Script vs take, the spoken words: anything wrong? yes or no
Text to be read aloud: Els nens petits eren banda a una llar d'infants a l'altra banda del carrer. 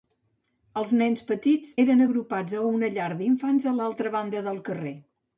yes